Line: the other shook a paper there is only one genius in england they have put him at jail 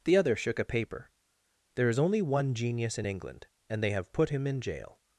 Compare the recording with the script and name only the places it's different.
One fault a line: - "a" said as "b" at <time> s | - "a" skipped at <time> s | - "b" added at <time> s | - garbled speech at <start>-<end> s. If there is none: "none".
- "and" added at 3.7 s
- "at" said as "in" at 4.5 s